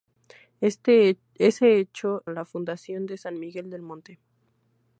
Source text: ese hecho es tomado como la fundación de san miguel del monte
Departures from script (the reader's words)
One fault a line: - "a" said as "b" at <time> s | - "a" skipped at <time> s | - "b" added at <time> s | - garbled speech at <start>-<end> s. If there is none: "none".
- "es tomado como" skipped at 2.2 s